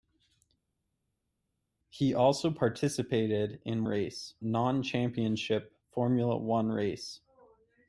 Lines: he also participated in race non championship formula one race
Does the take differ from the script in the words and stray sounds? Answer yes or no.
no